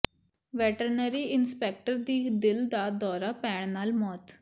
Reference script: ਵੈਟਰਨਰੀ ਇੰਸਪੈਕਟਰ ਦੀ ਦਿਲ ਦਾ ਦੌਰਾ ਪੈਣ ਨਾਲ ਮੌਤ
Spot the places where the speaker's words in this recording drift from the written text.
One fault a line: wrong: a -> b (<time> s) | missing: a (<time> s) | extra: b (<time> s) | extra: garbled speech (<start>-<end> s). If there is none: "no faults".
no faults